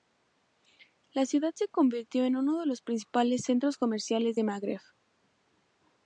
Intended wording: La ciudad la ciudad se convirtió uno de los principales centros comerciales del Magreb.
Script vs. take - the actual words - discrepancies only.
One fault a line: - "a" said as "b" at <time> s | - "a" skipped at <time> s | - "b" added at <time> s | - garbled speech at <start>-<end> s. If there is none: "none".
- "la ciudad" skipped at 1.5 s
- "en" added at 2.2 s